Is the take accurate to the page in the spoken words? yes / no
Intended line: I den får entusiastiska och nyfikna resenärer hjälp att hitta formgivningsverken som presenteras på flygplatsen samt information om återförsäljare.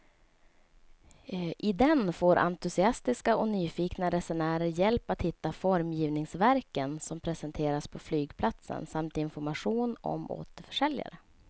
yes